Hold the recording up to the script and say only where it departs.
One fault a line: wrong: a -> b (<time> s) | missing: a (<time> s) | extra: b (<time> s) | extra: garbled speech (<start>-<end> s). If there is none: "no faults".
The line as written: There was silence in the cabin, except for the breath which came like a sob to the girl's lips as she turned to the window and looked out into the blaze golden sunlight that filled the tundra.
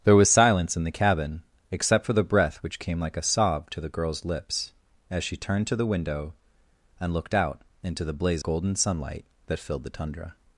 no faults